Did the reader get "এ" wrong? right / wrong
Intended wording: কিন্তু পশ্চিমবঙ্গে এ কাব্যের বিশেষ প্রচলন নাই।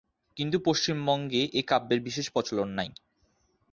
right